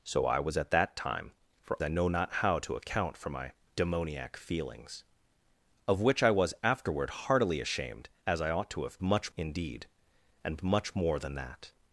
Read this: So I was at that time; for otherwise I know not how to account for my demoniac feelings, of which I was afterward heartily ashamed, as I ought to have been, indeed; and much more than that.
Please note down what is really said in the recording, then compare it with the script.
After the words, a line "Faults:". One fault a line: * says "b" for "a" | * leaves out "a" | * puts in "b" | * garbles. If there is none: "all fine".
So I was at that time; for I know not how to account for my demoniac feelings, of which I was afterward heartily ashamed, as I ought to have much, indeed; and much more than that.
Faults:
* leaves out "otherwise"
* says "much" for "been"